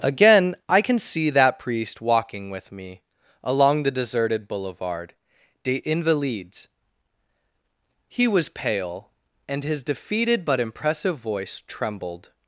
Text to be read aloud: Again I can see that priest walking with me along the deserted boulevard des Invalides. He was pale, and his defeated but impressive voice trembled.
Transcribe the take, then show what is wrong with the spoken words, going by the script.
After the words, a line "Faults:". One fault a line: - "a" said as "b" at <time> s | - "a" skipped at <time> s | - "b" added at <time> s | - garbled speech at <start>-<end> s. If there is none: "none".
Again I can see that priest walking with me along the deserted boulevard des Invalides. He was pale, and his defeated but impressive voice trembled.
Faults:
none